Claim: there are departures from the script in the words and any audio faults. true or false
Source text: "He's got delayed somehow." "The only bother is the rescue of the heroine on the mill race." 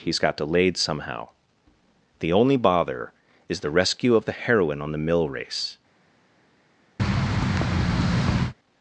true